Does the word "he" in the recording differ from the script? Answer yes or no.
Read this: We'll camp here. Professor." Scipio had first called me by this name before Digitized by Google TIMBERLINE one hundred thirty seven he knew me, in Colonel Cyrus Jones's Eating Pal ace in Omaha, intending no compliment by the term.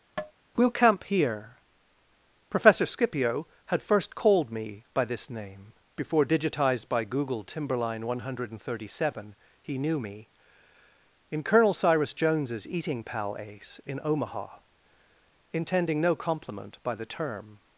no